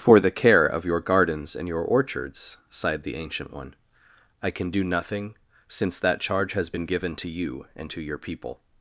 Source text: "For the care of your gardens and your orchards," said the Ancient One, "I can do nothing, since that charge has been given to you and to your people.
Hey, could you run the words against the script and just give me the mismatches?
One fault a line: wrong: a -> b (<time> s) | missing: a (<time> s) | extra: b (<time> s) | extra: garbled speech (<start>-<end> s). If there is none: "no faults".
wrong: said -> sighed (2.7 s)